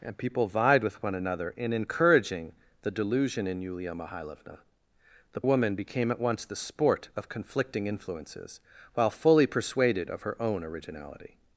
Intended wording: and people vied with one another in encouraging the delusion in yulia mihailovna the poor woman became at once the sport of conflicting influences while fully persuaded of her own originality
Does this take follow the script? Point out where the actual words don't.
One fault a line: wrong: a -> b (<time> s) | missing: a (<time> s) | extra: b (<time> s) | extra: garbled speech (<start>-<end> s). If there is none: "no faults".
missing: poor (5.4 s)